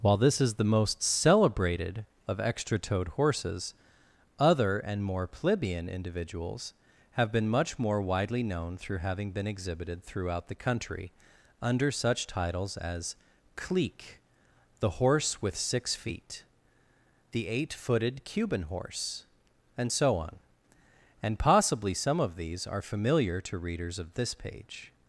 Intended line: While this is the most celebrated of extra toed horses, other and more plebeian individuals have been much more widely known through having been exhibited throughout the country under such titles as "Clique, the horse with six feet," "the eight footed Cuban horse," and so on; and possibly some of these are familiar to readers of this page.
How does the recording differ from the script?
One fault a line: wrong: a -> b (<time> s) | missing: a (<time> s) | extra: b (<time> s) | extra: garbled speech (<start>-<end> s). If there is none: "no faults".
no faults